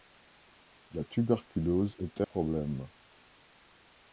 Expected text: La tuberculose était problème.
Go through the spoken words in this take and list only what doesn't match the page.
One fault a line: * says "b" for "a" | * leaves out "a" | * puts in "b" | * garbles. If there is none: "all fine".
all fine